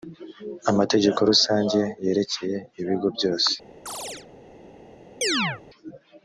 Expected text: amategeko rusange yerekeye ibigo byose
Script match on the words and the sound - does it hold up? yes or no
no